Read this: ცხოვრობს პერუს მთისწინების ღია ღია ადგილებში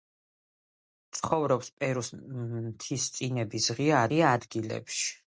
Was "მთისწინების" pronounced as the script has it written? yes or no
yes